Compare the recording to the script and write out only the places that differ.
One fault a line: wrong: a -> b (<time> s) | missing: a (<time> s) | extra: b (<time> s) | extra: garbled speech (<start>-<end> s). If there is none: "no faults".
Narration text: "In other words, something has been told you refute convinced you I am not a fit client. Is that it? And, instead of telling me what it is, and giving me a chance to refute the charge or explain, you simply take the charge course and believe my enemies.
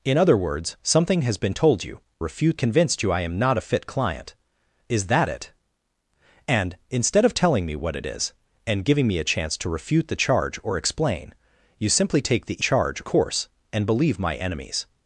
no faults